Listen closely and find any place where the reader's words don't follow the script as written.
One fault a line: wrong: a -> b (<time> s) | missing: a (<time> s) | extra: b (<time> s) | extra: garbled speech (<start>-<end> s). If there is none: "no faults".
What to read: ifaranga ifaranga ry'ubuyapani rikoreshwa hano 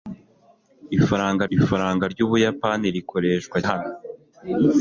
no faults